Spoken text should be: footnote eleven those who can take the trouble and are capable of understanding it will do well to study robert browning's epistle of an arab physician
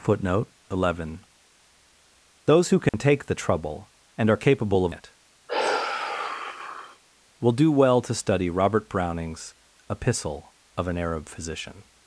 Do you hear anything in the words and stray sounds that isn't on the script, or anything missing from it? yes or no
yes